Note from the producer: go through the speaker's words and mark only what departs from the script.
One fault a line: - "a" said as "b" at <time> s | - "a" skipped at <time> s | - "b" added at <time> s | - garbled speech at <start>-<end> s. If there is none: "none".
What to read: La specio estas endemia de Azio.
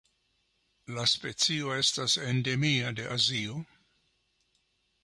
none